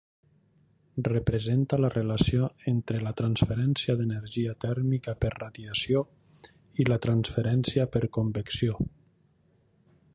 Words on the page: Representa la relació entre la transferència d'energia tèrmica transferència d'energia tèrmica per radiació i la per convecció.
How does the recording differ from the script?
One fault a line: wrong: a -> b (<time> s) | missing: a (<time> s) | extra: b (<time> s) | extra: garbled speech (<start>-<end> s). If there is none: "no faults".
missing: transferència d'energia tèrmica (5.2 s)
extra: transferència (7.1 s)